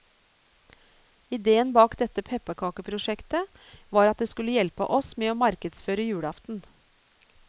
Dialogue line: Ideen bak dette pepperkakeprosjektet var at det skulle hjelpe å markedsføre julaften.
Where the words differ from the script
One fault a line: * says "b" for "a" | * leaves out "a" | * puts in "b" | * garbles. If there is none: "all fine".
* puts in "oss med"